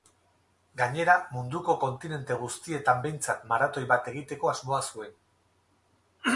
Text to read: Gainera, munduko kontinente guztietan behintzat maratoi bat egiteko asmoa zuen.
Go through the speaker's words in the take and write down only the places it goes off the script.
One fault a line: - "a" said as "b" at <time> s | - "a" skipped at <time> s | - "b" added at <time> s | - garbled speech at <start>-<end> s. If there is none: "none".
none